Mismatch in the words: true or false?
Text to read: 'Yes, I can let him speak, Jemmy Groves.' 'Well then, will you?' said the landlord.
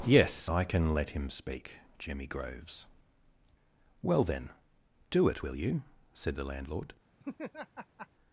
true